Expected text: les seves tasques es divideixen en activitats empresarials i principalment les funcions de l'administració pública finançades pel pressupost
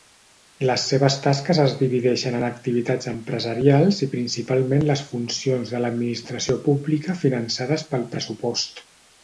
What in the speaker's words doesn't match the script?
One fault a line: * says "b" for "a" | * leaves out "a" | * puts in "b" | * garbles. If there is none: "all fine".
all fine